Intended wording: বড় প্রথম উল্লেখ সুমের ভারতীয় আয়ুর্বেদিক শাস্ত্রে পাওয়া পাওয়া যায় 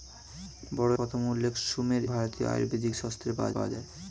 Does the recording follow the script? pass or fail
pass